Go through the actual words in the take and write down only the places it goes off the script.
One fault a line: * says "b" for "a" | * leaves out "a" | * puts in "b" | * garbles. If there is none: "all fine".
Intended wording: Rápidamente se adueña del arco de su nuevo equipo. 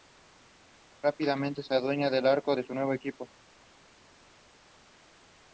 all fine